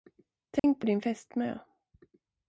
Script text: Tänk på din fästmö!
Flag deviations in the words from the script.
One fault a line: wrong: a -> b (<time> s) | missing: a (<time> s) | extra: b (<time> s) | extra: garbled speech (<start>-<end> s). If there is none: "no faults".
no faults